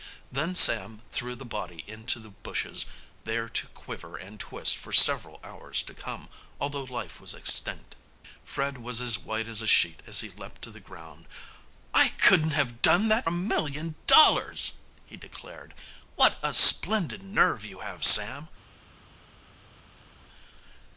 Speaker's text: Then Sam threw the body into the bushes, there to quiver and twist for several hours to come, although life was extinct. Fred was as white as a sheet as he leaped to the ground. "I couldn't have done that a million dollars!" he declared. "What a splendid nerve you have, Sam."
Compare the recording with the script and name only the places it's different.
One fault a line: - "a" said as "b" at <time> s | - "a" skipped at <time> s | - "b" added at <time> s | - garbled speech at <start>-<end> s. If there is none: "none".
none